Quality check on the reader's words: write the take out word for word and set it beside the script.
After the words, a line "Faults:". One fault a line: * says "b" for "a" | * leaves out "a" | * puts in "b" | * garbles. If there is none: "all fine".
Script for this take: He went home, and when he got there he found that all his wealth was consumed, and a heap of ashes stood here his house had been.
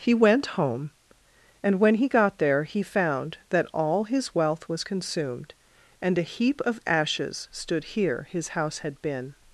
He went home, and when he got there he found that all his wealth was consumed, and a heap of ashes stood here his house had been.
Faults:
all fine